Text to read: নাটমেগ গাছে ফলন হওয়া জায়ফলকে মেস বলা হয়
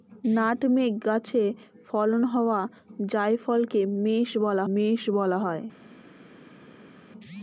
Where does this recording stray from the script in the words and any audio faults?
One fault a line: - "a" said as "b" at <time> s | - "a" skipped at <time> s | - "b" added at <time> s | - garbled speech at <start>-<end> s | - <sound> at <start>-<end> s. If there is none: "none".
- "মেস বলা" added at 4.7 s